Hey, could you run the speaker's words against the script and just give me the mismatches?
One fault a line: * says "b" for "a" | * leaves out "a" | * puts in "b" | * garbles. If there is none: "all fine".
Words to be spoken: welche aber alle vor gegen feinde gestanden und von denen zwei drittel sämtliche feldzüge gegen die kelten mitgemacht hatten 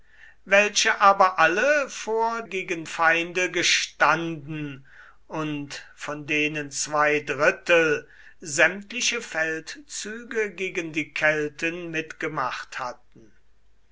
all fine